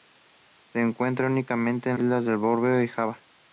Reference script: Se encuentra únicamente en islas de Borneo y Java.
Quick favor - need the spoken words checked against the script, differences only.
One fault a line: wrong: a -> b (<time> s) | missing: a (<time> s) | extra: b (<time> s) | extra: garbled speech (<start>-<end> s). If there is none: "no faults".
no faults